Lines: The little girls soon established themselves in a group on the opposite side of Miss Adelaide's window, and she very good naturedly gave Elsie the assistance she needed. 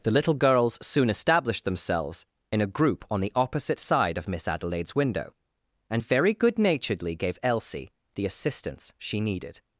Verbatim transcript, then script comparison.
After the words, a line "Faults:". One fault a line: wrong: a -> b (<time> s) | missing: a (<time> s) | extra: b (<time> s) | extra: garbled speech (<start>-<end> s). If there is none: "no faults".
The little girls soon established themselves in a group on the opposite side of Miss Adelaide's window, and very good naturedly gave Elsie the assistance she needed.
Faults:
missing: she (6.0 s)